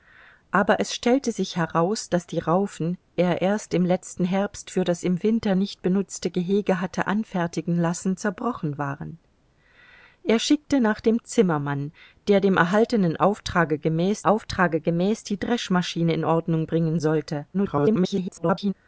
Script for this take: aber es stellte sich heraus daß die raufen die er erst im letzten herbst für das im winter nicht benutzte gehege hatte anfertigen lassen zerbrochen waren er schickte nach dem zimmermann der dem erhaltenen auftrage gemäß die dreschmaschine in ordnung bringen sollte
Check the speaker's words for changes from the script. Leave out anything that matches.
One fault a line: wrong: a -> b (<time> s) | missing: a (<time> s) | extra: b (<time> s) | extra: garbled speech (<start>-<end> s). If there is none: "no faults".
missing: die (3.0 s)
extra: auftrage gemäß (14.2 s)
extra: garbled speech (17.5-18.7 s)